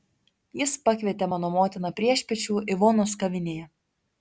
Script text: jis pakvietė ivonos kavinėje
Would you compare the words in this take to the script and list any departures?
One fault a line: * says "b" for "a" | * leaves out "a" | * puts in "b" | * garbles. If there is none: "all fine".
* puts in "mano motiną priešpiečių"